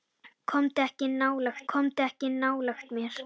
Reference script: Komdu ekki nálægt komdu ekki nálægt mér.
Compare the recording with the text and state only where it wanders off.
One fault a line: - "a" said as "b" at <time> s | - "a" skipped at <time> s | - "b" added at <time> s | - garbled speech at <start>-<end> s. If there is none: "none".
none